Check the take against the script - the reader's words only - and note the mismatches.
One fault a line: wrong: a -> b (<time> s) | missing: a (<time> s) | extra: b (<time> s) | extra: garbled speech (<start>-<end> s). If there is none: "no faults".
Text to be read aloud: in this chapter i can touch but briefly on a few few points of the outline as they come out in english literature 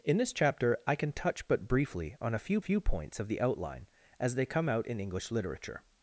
no faults